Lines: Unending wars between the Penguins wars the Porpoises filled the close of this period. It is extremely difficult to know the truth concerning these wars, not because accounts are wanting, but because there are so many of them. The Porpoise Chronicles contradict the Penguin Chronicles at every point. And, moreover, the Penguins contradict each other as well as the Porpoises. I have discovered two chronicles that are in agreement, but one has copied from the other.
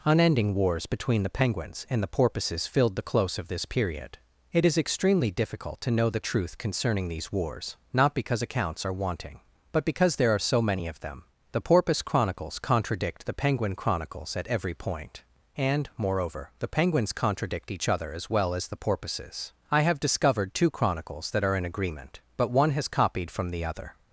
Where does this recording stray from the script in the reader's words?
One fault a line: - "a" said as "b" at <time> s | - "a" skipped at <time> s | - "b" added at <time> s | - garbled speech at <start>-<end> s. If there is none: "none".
- "wars" said as "and" at 1.9 s